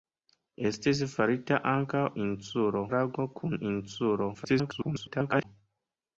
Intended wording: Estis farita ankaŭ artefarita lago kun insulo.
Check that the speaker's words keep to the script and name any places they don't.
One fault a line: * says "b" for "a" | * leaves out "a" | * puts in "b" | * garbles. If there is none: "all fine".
* says "insulo" for "artefarita"
* garbles